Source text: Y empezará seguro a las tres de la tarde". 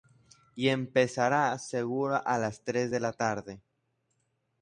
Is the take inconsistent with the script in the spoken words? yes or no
no